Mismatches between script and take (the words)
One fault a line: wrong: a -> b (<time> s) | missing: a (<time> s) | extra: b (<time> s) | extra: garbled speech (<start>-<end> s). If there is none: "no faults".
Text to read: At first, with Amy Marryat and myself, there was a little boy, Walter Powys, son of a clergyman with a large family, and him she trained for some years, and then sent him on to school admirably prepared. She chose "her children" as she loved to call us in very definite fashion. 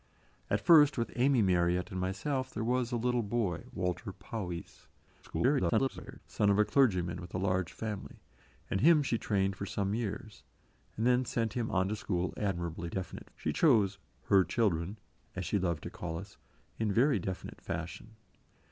extra: garbled speech (5.2-6.2 s)
wrong: prepared -> definite (12.9 s)